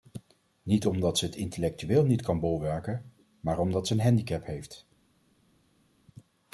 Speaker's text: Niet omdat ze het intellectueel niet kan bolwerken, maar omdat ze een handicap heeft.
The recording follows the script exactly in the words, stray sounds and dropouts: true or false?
true